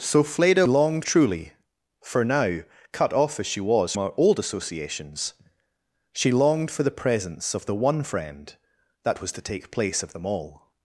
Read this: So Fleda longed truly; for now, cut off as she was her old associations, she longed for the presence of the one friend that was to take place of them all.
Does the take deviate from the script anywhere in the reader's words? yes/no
no